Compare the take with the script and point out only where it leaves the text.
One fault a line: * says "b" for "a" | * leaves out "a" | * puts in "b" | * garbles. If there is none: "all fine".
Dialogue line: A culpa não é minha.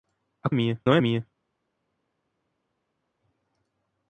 * says "minha" for "culpa"